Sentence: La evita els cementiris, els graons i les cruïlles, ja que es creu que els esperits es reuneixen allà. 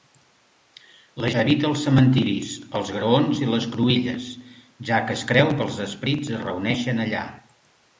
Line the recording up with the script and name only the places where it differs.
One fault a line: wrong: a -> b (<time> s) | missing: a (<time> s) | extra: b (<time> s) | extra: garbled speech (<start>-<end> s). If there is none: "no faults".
no faults